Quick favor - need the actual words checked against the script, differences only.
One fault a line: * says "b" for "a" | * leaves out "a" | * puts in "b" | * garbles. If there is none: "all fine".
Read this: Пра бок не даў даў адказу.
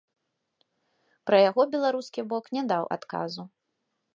* puts in "яго беларускі"
* leaves out "даў"